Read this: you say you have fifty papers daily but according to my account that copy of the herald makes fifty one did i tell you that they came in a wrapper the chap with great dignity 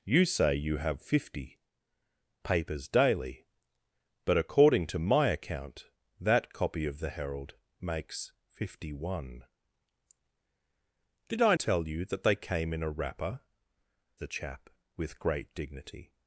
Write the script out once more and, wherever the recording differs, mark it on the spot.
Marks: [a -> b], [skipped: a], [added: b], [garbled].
you say you have fifty papers daily but according to my account that copy of the herald makes fifty one did i tell you that they came in a wrapper the chap with great dignity